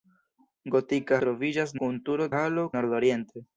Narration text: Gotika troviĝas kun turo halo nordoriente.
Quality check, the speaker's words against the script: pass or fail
pass